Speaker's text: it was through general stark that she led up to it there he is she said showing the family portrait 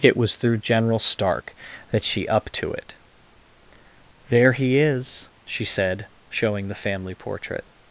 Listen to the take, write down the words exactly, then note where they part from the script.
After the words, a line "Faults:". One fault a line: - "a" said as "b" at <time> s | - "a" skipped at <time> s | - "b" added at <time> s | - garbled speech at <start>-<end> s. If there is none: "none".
it was through general stark that she up to it there he is she said showing the family portrait
Faults:
- "led" skipped at 2.3 s